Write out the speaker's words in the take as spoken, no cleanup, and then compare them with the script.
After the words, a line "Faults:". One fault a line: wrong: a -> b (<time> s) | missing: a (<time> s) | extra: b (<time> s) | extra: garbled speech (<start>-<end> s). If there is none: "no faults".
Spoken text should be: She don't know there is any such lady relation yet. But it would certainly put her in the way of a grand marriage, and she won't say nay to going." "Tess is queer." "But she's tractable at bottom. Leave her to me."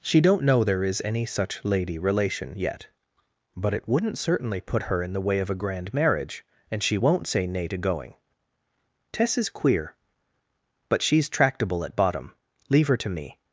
She don't know there is any such lady relation yet. But it wouldn't certainly put her in the way of a grand marriage, and she won't say nay to going." "Tess is queer." "But she's tractable at bottom. Leave her to me."
Faults:
wrong: would -> wouldn't (3.9 s)